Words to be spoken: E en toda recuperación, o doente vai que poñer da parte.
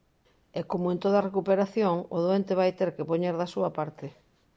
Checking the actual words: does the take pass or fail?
fail